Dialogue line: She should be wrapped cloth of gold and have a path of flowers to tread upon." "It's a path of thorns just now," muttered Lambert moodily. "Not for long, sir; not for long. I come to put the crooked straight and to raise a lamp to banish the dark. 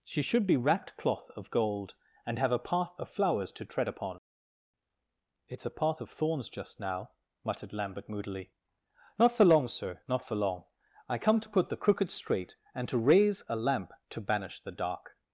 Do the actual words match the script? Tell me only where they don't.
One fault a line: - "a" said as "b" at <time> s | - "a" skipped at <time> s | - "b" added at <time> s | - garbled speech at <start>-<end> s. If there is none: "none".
none